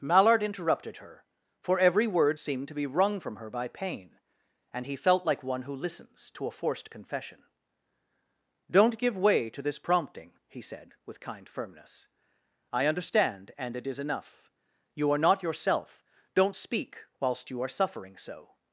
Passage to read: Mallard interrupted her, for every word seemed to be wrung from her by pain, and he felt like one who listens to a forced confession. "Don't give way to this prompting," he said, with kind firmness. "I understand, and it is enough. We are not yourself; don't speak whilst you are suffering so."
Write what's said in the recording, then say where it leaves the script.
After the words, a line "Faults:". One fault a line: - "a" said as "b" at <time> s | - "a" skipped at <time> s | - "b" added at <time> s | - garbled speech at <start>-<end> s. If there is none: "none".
Mallard interrupted her, for every word seemed to be wrung from her by pain, and he felt like one who listens to a forced confession. "Don't give way to this prompting," he said, with kind firmness. "I understand, and it is enough. You are not yourself; don't speak whilst you are suffering so."
Faults:
- "We" said as "You" at 14.9 s